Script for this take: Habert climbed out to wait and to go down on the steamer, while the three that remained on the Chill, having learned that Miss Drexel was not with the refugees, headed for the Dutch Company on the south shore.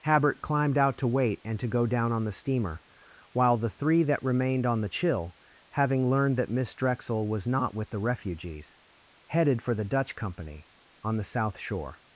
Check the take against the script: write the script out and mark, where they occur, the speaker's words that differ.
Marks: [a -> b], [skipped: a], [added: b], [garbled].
Habert climbed out to wait and to go down on the steamer, while the three that remained on the Chill, having learned that Miss Drexel was not with the refugees, headed for the Dutch Company on the south shore.